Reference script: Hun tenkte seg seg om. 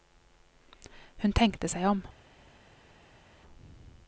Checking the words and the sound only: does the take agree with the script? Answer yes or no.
no